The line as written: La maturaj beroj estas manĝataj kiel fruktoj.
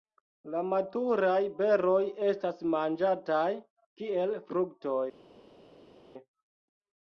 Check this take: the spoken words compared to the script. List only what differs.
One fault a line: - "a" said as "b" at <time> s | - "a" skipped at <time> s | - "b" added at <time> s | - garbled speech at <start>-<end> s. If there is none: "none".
none